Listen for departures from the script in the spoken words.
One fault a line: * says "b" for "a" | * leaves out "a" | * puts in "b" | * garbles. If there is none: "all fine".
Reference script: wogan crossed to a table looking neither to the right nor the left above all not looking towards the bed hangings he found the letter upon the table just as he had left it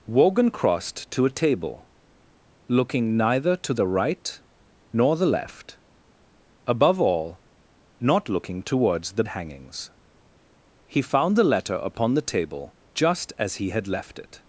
* leaves out "bed"